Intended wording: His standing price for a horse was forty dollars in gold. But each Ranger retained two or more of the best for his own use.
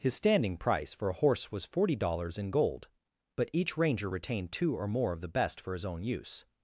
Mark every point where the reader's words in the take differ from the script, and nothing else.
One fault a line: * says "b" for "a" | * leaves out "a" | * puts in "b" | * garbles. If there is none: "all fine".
all fine